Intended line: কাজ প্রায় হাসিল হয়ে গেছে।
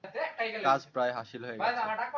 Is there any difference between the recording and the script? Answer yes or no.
no